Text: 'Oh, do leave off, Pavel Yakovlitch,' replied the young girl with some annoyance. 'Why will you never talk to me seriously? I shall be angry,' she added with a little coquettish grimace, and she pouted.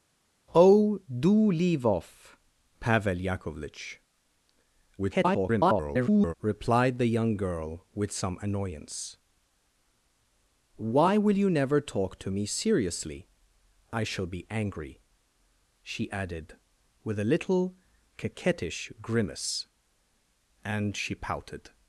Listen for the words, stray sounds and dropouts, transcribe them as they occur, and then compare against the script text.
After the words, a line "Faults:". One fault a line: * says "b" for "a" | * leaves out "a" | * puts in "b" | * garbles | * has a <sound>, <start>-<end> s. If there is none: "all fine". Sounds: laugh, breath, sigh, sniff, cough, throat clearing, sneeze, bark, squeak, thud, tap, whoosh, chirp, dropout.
'Oh, do leave off, Pavel Yakovlitch,' [garbled] replied the young girl with some annoyance. 'Why will you never talk to me seriously? I shall be angry,' she added with a little coquettish grimace, and she pouted.
Faults:
* garbles